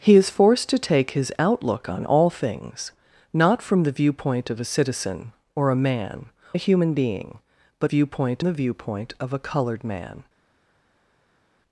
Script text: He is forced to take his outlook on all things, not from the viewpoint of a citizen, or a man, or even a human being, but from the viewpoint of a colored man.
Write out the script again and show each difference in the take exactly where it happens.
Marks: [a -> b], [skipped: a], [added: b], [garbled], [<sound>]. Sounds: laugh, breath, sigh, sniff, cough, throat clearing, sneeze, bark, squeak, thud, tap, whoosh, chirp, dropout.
He is forced to take his outlook on all things, not from the viewpoint of a citizen, or a man, [skipped: or even] a human being, but [from -> viewpoint] the viewpoint of a colored man.